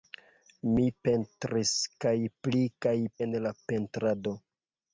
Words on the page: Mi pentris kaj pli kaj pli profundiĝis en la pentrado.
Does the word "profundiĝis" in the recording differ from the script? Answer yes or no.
yes